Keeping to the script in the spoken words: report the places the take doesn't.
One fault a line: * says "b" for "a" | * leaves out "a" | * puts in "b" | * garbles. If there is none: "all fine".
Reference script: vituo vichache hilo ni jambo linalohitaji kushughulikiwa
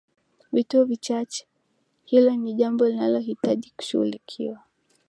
all fine